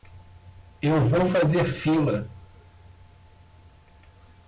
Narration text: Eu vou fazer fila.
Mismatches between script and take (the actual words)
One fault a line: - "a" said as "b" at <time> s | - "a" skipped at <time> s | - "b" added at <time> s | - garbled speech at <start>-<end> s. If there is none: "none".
none